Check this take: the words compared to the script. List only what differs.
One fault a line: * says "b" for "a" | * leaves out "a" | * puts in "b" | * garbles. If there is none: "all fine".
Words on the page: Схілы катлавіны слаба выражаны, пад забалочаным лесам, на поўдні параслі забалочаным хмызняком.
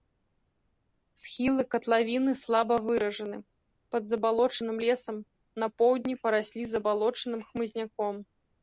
all fine